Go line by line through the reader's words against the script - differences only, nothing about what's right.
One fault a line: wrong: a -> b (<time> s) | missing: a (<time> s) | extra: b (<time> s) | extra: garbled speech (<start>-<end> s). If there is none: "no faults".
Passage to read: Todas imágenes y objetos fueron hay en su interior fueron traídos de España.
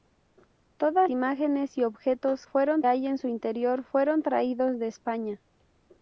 no faults